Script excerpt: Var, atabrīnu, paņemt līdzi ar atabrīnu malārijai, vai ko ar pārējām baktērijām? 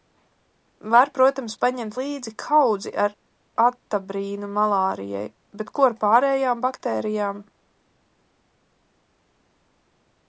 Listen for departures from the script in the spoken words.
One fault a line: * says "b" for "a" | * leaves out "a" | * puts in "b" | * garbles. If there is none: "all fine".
* says "protams" for "atabrīnu"
* puts in "kaudzi"
* says "bet" for "vai"